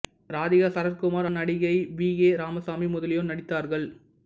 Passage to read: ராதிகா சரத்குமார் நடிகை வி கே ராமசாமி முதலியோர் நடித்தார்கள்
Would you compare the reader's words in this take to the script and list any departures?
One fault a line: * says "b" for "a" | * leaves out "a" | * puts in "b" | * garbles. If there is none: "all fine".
all fine